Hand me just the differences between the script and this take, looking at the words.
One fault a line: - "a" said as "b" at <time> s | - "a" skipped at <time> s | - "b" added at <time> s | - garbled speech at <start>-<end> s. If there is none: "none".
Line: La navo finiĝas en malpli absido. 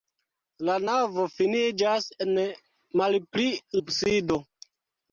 none